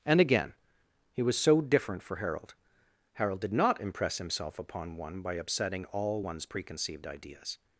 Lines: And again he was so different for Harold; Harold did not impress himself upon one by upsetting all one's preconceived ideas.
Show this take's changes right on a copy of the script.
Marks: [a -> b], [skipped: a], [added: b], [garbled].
And again he was so different for Harold; Harold did not impress himself upon one by upsetting all one's preconceived ideas.